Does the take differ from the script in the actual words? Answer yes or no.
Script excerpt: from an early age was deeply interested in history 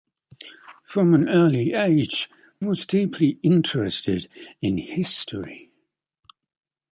no